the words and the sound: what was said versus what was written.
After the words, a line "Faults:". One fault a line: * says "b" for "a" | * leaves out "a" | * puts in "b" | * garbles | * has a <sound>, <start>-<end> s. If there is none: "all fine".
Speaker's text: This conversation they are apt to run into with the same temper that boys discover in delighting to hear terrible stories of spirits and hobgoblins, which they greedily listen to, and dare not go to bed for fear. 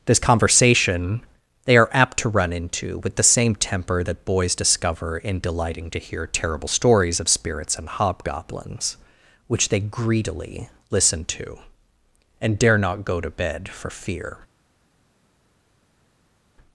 This conversation they are apt to run into with the same temper that boys discover in delighting to hear terrible stories of spirits and hobgoblins, which they greedily listen to, and dare not go to bed for fear.
Faults:
all fine